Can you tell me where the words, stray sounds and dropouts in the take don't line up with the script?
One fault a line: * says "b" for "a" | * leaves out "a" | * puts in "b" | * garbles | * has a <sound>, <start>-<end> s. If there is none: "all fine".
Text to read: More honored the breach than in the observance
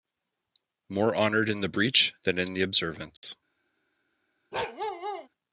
* puts in "in"
* has a dropout, 3.2-3.2 s
* has a bark, 4.5-5.3 s